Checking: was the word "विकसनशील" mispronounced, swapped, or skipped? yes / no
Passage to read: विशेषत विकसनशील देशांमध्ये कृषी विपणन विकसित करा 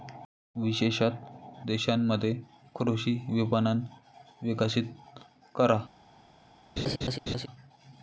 yes